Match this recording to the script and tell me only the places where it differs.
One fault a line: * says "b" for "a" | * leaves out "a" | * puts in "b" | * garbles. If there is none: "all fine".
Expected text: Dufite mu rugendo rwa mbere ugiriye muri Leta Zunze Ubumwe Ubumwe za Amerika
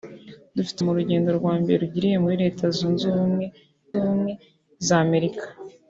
all fine